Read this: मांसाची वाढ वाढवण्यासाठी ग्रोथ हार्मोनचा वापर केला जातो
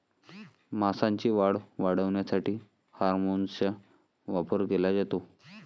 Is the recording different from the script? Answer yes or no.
yes